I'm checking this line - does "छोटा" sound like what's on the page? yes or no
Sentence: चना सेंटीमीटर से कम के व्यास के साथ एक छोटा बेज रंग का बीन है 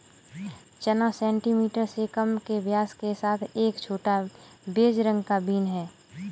yes